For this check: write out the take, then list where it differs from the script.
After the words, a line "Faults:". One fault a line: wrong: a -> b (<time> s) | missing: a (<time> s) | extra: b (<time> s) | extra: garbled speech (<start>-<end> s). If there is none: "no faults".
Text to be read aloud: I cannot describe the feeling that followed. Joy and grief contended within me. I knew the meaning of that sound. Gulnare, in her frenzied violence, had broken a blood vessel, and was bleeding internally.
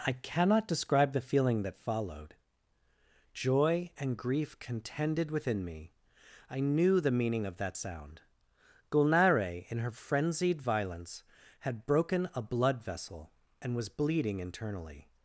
I cannot describe the feeling that followed. Joy and grief contended within me. I knew the meaning of that sound. Gulnare, in her frenzied violence, had broken a blood vessel, and was bleeding internally.
Faults:
no faults